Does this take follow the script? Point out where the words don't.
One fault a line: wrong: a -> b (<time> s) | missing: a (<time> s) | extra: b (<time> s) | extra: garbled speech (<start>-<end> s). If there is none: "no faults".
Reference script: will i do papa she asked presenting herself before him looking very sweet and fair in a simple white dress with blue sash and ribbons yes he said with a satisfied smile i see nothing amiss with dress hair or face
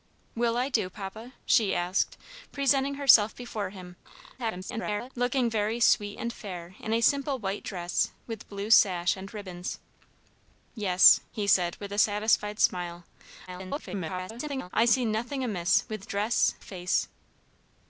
extra: garbled speech (4.4-5.1 s)
extra: garbled speech (13.5-14.7 s)
missing: hair or (16.6 s)